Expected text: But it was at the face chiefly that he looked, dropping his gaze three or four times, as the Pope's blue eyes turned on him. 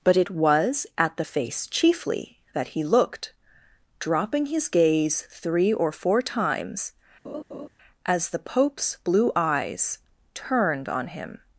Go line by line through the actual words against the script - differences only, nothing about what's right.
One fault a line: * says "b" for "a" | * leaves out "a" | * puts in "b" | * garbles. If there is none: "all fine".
all fine